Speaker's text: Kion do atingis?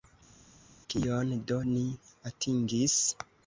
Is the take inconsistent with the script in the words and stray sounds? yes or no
yes